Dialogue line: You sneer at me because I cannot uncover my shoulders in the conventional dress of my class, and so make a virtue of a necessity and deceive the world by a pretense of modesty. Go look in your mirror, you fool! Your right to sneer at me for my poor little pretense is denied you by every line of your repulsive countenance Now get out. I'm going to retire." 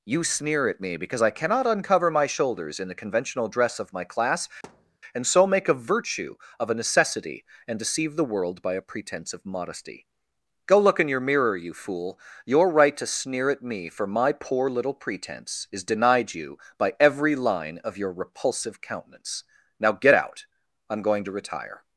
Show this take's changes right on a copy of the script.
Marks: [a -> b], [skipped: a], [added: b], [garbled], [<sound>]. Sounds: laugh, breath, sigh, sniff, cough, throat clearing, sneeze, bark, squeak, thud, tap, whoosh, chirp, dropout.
You sneer at me because I cannot uncover my shoulders in the conventional dress of my class, [thud] and so make a virtue of a necessity and deceive the world by a pretense of modesty. Go look in your mirror, you fool! Your right to sneer at me for my poor little pretense is denied you by every line of your repulsive countenance Now get out. I'm going to retire."